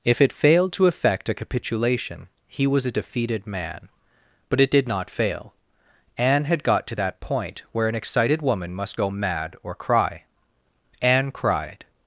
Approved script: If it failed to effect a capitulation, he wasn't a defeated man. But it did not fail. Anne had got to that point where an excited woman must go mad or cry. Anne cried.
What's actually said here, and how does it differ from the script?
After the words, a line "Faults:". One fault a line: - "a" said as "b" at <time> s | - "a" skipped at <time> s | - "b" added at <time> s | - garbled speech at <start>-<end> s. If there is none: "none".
If it failed to effect a capitulation, he was a defeated man. But it did not fail. Anne had got to that point where an excited woman must go mad or cry. Anne cried.
Faults:
- "wasn't" said as "was" at 2.6 s